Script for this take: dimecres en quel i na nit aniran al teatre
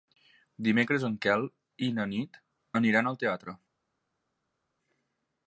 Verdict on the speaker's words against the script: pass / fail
pass